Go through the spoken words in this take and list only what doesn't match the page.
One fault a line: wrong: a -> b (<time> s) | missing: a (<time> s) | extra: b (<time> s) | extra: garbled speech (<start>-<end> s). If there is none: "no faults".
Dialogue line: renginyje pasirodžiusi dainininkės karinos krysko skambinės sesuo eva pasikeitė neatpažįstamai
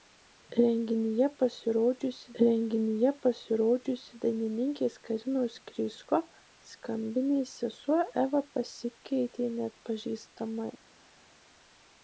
extra: renginyje pasirodžiusi (2.4 s)